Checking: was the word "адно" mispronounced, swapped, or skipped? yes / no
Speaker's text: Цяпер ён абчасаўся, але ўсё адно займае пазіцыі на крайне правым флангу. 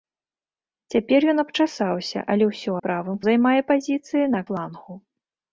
yes